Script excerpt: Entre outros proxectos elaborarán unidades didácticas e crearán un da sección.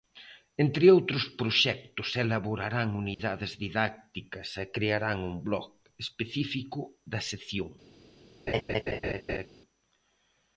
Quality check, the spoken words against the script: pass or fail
fail